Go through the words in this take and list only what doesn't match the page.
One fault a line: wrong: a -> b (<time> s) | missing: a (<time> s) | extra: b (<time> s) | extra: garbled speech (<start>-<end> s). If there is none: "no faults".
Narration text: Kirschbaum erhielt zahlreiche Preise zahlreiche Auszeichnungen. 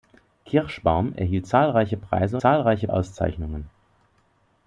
no faults